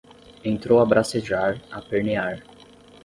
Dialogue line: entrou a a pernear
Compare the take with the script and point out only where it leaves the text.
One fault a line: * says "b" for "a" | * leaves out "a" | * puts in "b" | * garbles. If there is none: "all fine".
* puts in "bracejar"